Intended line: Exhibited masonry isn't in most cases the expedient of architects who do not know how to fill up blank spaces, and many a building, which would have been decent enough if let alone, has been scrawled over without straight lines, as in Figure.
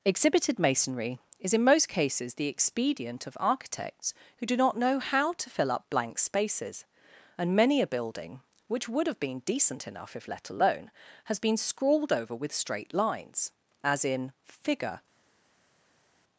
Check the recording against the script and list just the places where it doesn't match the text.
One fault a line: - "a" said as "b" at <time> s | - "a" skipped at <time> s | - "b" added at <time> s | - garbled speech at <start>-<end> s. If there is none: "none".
- "isn't" said as "is" at 1.4 s
- "without" said as "with" at 12.3 s